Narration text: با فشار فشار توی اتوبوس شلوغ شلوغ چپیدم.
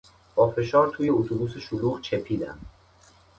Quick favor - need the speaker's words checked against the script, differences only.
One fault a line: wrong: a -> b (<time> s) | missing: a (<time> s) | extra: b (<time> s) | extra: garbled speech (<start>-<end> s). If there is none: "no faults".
missing: فشار (0.9 s)
missing: شلوغ (2.0 s)